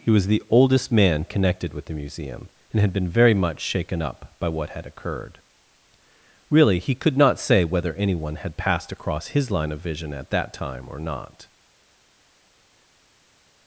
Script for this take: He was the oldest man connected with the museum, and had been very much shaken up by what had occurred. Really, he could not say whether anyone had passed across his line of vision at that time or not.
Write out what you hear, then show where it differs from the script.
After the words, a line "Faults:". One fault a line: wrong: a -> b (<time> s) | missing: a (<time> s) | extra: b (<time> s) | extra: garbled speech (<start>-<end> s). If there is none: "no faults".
He was the oldest man connected with the museum, and had been very much shaken up by what had occurred. Really, he could not say whether anyone had passed across his line of vision at that time or not.
Faults:
no faults